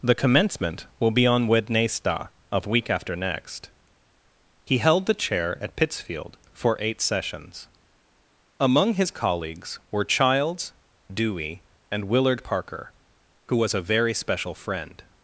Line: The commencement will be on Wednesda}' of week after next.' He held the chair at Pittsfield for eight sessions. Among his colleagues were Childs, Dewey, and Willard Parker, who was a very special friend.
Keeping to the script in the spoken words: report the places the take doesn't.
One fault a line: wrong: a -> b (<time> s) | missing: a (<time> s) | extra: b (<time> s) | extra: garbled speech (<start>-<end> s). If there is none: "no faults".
no faults